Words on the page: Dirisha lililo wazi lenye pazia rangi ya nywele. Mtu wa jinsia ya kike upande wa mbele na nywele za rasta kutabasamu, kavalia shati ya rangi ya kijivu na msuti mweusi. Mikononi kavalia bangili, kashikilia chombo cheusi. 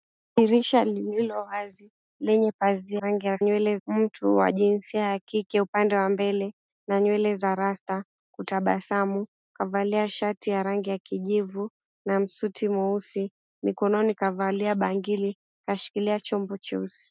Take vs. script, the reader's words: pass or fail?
pass